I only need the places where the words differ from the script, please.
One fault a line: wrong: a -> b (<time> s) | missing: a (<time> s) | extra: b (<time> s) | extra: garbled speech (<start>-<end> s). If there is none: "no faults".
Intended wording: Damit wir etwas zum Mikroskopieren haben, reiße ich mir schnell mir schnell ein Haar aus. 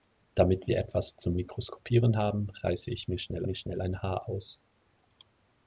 no faults